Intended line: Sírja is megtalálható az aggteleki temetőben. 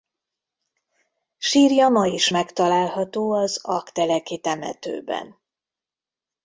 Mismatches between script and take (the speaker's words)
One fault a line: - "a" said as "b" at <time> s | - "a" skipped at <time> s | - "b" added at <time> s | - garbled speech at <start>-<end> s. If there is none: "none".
- "ma" added at 1.9 s